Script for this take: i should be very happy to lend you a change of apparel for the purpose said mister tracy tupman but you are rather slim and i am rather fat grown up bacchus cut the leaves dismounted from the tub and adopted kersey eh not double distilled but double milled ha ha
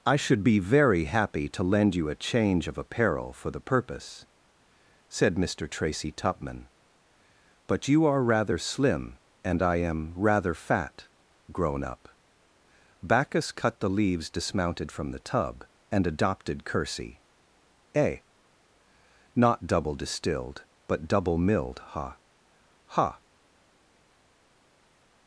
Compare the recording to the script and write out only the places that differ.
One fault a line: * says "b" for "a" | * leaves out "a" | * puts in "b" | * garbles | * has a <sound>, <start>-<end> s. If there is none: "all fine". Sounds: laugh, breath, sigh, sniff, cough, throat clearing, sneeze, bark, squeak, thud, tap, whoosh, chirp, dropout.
all fine